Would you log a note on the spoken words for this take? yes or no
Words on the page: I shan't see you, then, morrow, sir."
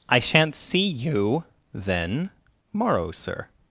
no